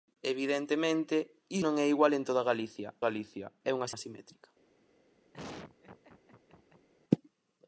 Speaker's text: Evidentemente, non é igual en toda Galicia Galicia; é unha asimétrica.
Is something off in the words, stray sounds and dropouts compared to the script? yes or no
yes